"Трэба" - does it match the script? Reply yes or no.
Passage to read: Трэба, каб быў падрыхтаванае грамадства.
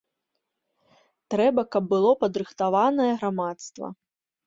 yes